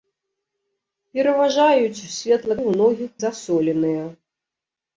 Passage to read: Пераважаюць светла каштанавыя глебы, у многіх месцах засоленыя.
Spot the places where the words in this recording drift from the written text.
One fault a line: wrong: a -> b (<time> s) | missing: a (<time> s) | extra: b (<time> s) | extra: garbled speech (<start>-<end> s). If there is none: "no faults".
missing: каштанавыя глебы (2.5 s)
missing: месцах (3.1 s)